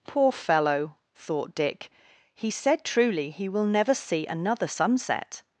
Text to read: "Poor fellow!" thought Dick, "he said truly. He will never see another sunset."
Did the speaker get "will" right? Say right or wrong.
right